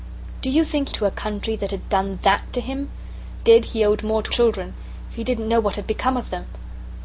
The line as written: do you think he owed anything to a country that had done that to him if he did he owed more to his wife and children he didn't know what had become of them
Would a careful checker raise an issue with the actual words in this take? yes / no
yes